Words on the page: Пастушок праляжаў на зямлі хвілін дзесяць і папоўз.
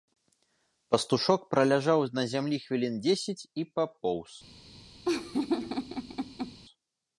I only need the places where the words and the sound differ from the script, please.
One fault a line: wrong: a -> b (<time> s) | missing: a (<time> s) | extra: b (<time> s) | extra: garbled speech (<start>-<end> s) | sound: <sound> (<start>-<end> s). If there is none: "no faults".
sound: laugh (5.0-6.6 s)